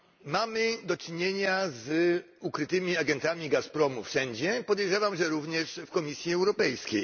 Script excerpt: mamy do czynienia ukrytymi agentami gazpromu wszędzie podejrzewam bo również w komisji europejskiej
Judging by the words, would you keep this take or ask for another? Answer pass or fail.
fail